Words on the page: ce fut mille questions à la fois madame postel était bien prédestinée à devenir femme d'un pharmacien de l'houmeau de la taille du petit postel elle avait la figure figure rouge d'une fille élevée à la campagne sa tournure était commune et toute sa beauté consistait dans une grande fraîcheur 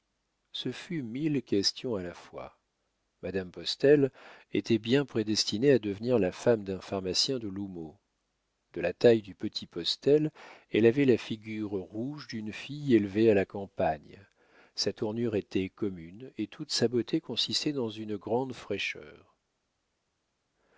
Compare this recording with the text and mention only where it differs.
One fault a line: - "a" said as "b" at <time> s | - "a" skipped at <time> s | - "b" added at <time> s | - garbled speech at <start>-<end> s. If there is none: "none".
- "la" added at 6.2 s
- "figure" skipped at 11.7 s